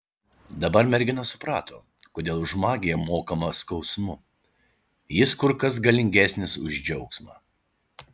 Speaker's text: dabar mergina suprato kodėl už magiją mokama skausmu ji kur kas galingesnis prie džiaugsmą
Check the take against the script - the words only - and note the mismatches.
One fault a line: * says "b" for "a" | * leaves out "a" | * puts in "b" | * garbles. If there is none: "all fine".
* says "jis" for "ji"
* says "už" for "prie"